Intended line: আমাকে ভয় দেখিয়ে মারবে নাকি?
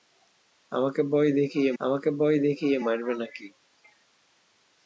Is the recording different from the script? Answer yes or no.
yes